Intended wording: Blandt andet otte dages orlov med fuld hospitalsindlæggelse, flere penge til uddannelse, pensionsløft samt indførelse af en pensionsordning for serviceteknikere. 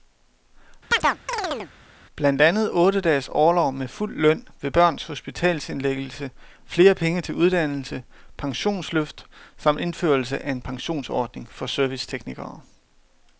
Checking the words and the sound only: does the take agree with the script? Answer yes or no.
no